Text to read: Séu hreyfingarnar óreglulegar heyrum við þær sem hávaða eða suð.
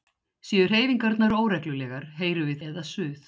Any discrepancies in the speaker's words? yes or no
yes